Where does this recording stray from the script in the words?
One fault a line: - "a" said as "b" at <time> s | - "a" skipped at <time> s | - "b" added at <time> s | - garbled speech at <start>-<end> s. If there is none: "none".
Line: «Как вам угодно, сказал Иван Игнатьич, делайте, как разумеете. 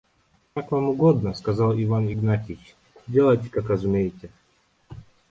none